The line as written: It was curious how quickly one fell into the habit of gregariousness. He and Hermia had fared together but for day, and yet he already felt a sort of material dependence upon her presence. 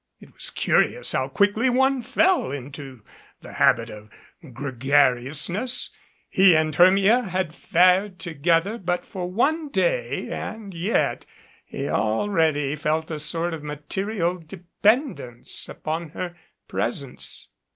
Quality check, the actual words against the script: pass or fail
fail